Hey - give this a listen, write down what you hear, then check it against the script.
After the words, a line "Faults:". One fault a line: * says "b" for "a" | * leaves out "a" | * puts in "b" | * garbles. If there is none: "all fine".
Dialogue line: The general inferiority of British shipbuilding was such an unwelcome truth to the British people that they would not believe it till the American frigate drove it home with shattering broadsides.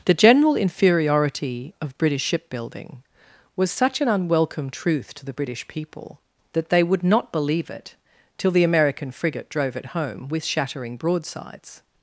The general inferiority of British shipbuilding was such an unwelcome truth to the British people that they would not believe it till the American frigate drove it home with shattering broadsides.
Faults:
all fine